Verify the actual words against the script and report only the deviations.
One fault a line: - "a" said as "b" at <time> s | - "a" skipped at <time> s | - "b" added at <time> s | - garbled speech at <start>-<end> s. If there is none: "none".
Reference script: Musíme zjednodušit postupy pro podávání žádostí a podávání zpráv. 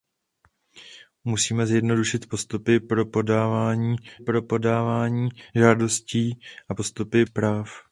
- "pro podávání" added at 4.2 s
- "podávání" said as "postupy" at 6.8 s